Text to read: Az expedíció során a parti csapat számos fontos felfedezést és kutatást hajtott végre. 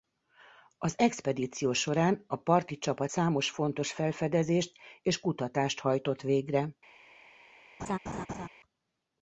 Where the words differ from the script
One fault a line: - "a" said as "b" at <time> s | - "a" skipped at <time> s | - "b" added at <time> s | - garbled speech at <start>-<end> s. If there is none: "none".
none